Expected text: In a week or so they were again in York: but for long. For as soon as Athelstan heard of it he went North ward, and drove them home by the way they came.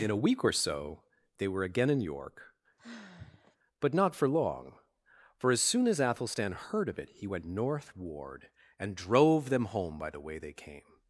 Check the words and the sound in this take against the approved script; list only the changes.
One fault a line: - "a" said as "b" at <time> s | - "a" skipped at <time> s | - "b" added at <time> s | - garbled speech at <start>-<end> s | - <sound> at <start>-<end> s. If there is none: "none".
- sigh at 2.8-3.6 s
- "not" added at 3.9 s